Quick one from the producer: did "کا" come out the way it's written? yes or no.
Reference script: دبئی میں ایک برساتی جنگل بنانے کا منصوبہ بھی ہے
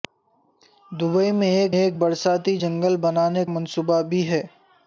no